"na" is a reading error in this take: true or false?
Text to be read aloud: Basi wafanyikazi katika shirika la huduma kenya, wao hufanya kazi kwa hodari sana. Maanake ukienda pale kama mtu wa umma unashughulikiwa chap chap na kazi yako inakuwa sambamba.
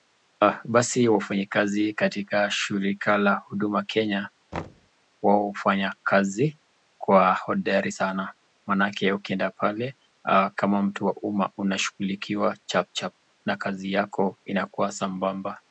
false